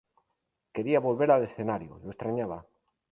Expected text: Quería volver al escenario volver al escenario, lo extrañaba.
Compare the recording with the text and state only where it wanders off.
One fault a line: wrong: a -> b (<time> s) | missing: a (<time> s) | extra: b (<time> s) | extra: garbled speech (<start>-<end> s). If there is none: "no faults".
missing: volver al escenario (2.0 s)